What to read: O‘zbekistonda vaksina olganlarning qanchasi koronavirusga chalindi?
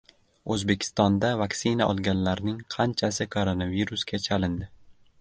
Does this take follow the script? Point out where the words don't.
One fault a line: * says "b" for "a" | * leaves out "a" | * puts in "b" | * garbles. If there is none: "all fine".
all fine